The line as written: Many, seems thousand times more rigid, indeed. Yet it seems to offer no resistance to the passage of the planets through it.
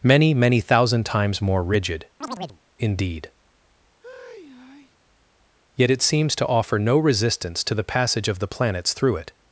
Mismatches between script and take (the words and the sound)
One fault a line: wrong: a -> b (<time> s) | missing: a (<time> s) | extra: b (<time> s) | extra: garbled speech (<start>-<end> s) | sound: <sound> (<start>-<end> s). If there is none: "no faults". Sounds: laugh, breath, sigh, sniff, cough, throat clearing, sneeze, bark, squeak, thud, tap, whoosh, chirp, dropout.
wrong: seems -> many (0.3 s)
sound: chirp (2.2-2.6 s)
sound: sigh (4.0-5.0 s)